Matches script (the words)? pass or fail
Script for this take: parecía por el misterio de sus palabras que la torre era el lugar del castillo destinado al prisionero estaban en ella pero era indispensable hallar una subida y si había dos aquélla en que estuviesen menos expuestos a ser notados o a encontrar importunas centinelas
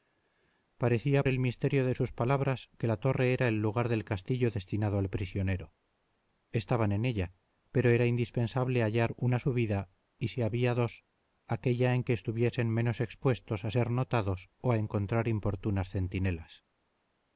fail